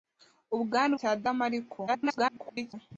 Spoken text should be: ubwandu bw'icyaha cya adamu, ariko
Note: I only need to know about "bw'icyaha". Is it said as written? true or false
false